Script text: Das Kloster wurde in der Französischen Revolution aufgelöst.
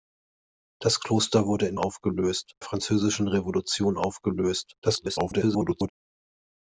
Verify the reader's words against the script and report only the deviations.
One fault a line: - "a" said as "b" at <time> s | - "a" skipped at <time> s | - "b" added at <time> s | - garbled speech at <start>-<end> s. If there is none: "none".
- "der" said as "aufgelöst" at 1.8 s
- garbled speech at 4.8-5.9 s